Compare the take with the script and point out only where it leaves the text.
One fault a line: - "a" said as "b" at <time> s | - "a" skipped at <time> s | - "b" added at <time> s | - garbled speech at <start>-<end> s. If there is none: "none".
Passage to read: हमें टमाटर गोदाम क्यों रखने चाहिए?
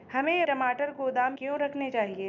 none